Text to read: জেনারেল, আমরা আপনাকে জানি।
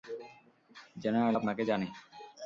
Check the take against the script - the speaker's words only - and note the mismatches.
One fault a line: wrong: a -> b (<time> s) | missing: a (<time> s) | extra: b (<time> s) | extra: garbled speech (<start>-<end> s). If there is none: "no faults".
missing: আমরা (1.4 s)